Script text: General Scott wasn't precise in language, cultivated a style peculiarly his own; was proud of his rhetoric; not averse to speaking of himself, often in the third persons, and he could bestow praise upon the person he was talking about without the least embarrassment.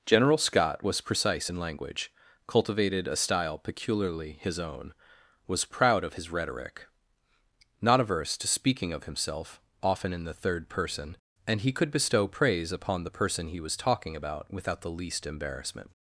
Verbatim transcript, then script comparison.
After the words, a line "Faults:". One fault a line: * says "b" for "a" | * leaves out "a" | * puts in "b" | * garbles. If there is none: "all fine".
General Scott was precise in language, cultivated a style peculiarly his own; was proud of his rhetoric; not averse to speaking of himself, often in the third person, and he could bestow praise upon the person he was talking about without the least embarrassment.
Faults:
* says "was" for "wasn't"
* says "person" for "persons"